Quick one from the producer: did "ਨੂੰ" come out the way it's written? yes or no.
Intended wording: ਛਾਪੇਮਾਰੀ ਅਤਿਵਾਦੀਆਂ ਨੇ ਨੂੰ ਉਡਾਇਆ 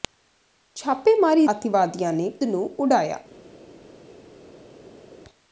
yes